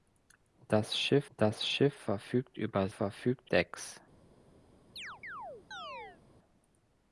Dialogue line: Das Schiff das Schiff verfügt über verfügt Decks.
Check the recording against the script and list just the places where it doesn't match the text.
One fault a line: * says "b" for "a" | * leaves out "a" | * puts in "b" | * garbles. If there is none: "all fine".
all fine